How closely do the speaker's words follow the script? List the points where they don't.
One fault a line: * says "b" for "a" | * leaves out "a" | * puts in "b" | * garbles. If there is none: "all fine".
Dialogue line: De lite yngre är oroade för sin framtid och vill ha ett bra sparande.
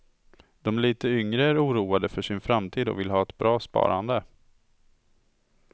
all fine